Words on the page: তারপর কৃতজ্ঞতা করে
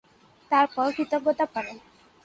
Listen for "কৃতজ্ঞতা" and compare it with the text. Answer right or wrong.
right